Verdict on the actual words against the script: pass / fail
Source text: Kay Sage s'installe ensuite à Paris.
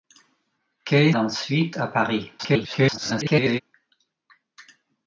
fail